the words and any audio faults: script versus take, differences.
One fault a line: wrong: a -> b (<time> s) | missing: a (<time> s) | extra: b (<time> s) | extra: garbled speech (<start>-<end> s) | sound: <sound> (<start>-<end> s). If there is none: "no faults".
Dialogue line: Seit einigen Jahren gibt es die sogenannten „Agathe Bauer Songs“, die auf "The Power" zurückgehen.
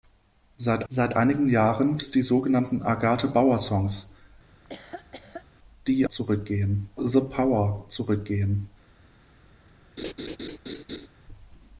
extra: seit (0.9 s)
missing: gibt (2.0 s)
sound: laugh (4.5-5.5 s)
wrong: auf -> zurückgehen (6.1 s)
sound: laugh (10.0-11.1 s)